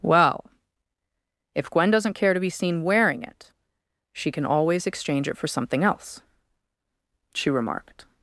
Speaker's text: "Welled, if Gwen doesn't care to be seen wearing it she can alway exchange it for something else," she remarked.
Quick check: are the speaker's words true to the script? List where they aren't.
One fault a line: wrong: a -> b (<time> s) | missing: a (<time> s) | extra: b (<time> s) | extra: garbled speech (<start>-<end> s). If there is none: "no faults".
wrong: Welled -> Well (0.0 s)
wrong: alway -> always (4.5 s)